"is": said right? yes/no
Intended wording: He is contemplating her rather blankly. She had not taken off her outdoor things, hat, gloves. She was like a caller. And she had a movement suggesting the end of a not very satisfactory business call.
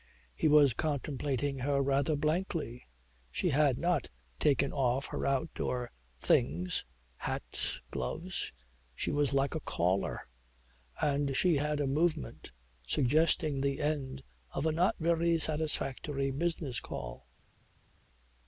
no